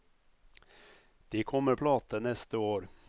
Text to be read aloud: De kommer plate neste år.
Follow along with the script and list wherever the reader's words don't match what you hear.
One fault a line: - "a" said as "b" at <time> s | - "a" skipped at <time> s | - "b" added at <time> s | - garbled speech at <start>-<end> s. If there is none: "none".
none